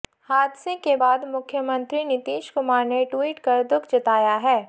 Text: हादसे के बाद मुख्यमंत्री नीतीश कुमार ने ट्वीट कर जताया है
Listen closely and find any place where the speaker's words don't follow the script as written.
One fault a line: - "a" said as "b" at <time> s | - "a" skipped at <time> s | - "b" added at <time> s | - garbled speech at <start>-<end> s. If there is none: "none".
- "दुख" added at 3.6 s